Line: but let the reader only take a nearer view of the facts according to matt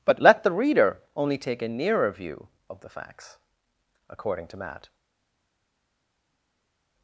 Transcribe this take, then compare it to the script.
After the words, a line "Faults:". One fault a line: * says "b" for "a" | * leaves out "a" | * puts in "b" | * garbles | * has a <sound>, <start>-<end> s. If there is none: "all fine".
but let the reader only take a nearer view of the facts according to matt
Faults:
all fine